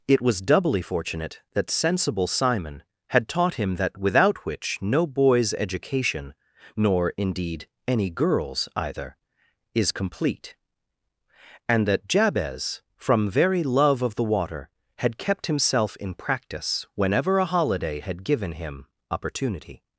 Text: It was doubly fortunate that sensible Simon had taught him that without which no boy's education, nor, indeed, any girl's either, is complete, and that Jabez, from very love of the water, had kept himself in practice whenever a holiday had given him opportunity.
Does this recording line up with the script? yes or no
yes